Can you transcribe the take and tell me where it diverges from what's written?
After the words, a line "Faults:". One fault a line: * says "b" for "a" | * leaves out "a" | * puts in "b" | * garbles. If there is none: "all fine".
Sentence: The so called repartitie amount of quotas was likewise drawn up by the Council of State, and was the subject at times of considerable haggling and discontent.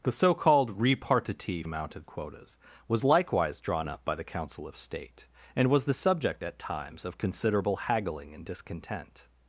The so called repartitie amount of quotas was likewise drawn up by the Council of State, and was the subject at times of considerable haggling and discontent.
Faults:
all fine